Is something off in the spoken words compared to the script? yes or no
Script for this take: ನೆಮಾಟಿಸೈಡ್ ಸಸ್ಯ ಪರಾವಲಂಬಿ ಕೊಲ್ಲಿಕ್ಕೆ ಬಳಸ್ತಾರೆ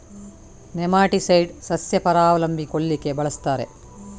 no